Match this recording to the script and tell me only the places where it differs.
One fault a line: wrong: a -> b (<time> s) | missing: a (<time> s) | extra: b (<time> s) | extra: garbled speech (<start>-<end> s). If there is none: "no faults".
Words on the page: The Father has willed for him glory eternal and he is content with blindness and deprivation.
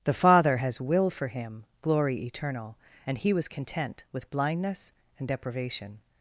wrong: willed -> will (0.8 s)
wrong: is -> was (3.3 s)